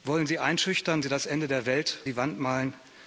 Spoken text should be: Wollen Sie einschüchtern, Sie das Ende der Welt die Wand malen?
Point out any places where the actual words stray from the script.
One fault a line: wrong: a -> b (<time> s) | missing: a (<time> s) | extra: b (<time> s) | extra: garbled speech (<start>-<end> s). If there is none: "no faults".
no faults